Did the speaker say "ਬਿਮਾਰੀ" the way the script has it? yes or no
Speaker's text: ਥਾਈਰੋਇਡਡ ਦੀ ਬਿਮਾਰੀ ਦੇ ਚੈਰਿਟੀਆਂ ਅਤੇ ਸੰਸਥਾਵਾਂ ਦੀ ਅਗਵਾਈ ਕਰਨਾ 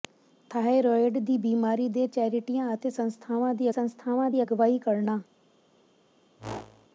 yes